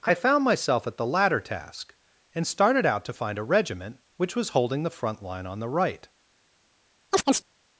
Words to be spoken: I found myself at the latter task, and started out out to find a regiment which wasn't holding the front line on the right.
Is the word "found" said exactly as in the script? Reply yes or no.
yes